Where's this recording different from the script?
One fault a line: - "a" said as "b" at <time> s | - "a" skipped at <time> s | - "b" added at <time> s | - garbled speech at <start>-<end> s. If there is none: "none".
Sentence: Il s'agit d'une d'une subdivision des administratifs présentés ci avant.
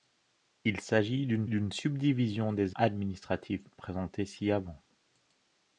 none